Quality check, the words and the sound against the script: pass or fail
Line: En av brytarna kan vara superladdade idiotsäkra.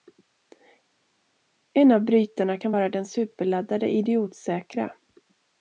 fail